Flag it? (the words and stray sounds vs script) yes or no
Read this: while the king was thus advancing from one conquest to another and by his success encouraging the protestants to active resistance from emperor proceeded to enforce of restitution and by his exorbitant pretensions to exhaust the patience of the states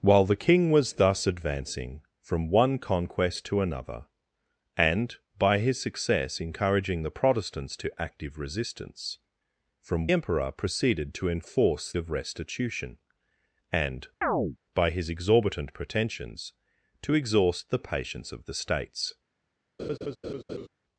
yes